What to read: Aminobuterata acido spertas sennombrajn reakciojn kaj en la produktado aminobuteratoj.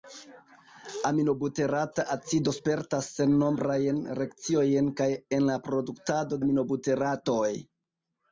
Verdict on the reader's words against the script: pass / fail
pass